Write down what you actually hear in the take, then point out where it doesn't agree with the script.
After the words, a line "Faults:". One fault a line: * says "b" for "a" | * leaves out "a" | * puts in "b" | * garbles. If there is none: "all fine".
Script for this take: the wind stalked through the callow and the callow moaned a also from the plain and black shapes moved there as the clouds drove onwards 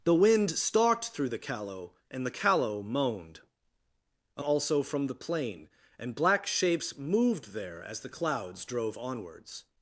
the wind stalked through the callow and the callow moaned a also from the plain and black shapes moved there as the clouds drove onwards
Faults:
all fine